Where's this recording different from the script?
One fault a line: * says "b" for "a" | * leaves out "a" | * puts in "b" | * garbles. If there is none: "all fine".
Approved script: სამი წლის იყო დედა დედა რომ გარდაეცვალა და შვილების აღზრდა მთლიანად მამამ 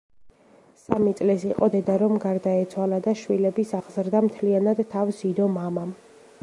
* leaves out "დედა"
* puts in "თავს იდო"